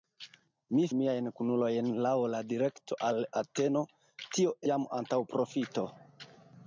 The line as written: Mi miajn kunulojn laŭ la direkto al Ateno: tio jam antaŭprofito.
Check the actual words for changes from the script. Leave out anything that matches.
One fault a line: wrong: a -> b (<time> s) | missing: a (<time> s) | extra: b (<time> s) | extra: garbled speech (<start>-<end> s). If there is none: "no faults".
no faults